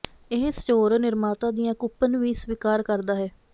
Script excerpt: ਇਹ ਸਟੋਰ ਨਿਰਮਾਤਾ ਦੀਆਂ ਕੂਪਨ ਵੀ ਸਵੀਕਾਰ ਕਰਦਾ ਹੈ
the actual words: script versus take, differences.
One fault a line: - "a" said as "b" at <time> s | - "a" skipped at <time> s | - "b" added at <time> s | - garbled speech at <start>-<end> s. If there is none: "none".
none